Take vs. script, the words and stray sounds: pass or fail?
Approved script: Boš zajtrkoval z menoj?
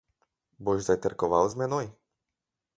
pass